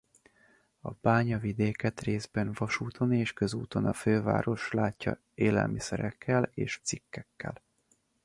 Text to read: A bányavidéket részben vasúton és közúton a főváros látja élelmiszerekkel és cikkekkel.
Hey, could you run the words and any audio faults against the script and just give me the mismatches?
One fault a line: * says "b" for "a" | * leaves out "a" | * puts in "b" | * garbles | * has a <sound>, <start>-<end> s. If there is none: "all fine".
all fine